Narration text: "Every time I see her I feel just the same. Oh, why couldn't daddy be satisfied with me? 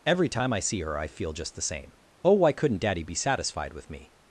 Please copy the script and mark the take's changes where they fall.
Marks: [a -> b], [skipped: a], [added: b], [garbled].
"Every time I see her I feel just the same. Oh, why couldn't daddy be satisfied with me?